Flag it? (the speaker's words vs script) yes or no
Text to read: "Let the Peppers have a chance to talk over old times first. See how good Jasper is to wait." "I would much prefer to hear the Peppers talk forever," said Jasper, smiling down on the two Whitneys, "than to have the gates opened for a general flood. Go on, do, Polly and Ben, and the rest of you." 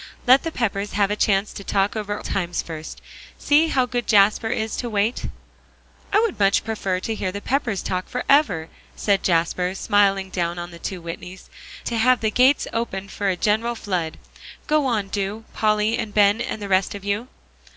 yes